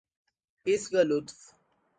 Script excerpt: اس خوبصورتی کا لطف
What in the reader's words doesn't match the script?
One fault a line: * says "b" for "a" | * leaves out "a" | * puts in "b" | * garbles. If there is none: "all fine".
* leaves out "خوبصورتی"